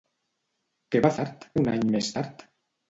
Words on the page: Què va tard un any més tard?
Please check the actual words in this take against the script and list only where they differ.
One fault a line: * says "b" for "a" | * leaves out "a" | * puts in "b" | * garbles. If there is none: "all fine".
all fine